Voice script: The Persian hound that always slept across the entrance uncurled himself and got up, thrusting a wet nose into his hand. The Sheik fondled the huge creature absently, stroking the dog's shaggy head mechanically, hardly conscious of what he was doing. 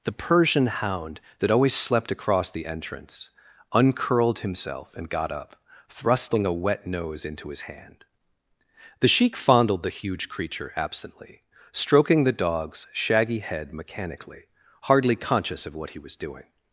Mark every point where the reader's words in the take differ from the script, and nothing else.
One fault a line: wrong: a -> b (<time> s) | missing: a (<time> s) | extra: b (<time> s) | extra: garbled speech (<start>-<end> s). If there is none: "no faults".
no faults